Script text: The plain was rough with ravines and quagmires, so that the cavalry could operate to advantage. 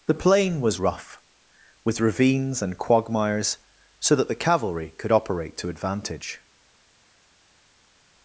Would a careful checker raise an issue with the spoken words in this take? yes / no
no